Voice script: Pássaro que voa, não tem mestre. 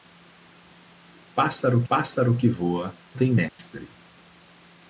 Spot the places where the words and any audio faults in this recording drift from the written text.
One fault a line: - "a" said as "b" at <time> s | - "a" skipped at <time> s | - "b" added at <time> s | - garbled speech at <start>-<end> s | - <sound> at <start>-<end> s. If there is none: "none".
- "pássaro" added at 1.9 s
- "não" skipped at 2.9 s
- dropout at 3.5-3.6 s